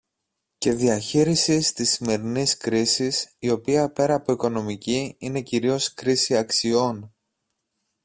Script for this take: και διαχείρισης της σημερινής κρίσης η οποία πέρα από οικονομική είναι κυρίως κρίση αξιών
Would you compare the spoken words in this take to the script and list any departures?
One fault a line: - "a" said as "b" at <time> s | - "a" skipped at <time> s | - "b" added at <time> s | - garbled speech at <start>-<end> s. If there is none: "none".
none